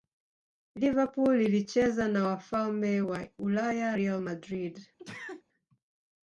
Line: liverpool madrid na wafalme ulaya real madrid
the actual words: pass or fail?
fail